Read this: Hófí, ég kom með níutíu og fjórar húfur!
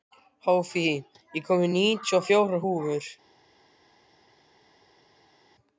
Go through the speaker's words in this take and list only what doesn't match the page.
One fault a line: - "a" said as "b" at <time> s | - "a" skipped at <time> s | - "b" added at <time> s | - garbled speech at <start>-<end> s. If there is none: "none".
none